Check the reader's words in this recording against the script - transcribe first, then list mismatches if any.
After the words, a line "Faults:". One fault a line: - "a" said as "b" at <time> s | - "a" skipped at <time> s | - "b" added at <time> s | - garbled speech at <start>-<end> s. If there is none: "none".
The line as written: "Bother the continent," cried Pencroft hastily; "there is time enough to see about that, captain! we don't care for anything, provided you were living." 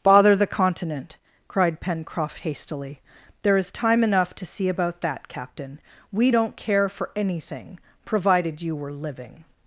"Bother the continent," cried Pencroft hastily; "there is time enough to see about that, captain! we don't care for anything, provided you were living."
Faults:
none